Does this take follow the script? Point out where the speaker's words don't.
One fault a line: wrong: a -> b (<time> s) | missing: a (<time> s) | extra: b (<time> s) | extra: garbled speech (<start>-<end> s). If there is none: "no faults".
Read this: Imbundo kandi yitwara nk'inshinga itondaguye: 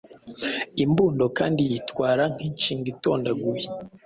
no faults